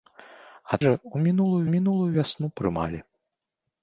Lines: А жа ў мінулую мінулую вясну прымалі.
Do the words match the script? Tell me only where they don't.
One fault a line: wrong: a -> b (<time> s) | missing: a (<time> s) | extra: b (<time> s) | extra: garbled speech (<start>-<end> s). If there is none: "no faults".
no faults